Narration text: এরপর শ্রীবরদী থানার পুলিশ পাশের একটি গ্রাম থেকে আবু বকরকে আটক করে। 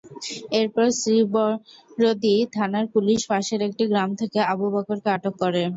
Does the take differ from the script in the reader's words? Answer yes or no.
no